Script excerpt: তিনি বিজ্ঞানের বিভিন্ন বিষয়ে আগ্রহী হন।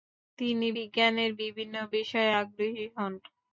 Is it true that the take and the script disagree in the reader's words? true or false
false